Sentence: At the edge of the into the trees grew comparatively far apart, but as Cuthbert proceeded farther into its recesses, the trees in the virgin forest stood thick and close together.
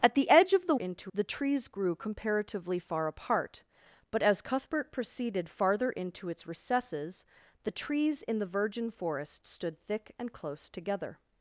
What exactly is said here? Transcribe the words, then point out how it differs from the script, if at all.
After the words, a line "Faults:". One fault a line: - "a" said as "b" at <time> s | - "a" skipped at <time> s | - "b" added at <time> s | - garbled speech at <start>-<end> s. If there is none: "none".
At the edge of the into the trees grew comparatively far apart, but as Cuthbert proceeded farther into its recesses, the trees in the virgin forest stood thick and close together.
Faults:
none